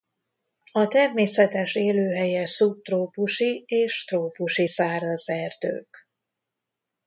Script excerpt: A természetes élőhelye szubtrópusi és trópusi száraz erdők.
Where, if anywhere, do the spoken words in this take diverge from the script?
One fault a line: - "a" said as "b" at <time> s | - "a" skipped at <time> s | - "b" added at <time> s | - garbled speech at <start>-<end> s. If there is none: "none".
none